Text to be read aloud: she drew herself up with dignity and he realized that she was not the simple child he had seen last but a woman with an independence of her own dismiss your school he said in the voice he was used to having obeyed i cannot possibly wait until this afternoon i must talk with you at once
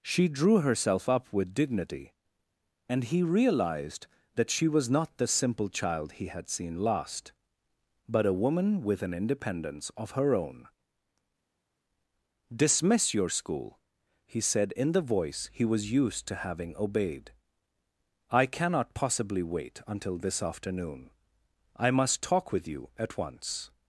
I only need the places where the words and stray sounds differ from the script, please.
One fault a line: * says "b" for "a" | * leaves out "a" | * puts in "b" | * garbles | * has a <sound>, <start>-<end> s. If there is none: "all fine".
all fine